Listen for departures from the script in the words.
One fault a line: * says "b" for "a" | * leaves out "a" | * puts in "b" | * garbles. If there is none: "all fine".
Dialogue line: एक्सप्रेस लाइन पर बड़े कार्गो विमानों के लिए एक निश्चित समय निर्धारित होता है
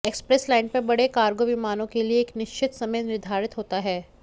all fine